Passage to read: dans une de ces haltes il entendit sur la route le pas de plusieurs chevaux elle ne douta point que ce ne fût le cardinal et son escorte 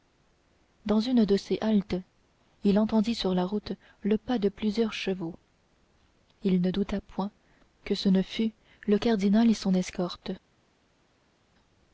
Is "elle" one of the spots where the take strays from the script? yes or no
yes